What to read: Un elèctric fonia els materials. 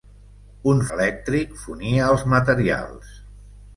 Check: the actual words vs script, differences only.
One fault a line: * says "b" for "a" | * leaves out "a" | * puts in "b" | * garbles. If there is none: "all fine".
all fine